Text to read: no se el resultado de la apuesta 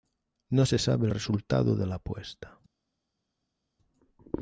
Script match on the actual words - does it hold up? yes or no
no